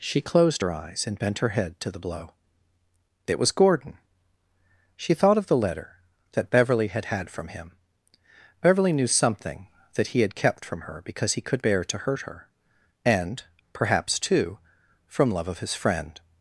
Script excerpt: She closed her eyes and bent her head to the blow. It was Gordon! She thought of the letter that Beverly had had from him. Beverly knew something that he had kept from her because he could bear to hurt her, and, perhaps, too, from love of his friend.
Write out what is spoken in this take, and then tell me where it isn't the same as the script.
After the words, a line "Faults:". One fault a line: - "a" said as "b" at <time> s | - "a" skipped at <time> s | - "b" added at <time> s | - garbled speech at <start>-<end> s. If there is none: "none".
She closed her eyes and bent her head to the blow. It was Gordon! She thought of the letter that Beverly had had from him. Beverly knew something that he had kept from her because he could bear to hurt her, and, perhaps, too, from love of his friend.
Faults:
none